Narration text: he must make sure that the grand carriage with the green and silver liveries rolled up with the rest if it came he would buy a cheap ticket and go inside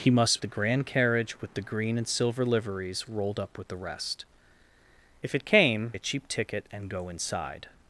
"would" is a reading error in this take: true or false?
true